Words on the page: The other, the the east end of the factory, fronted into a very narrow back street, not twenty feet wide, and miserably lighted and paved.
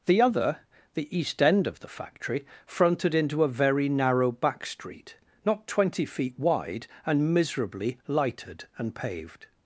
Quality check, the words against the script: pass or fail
fail